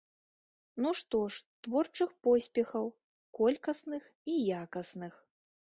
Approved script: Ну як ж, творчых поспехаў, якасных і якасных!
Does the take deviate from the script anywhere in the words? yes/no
yes